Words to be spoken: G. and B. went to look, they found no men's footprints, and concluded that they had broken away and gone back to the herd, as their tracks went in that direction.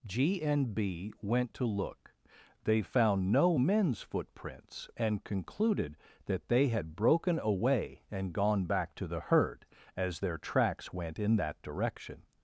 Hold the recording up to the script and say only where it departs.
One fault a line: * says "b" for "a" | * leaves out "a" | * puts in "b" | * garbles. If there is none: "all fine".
all fine